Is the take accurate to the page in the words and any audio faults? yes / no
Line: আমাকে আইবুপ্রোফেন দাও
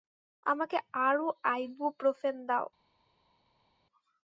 no